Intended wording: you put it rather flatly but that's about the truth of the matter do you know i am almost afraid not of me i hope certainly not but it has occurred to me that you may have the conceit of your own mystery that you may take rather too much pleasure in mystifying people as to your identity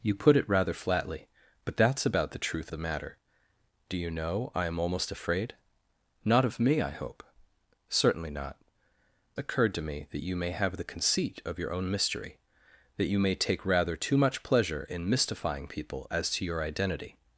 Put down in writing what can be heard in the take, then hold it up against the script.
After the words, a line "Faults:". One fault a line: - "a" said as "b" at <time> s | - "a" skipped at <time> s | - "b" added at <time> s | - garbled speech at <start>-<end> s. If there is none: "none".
you put it rather flatly but that's about the truth the matter do you know i am almost afraid not of me i hope certainly not occurred to me that you may have the conceit of your own mystery that you may take rather too much pleasure in mystifying people as to your identity
Faults:
- "of" skipped at 2.7 s
- "but it has" skipped at 8.6 s